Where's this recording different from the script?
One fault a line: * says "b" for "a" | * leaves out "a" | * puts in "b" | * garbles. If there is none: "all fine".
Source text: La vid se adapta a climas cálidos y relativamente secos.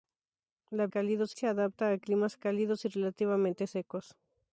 * says "cálidos" for "vid"